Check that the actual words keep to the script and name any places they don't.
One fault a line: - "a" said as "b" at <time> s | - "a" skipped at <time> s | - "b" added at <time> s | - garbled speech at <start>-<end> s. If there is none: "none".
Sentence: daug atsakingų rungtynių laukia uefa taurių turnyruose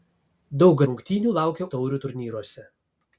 - "atsakingų" skipped at 0.8 s
- "uefa" skipped at 1.7 s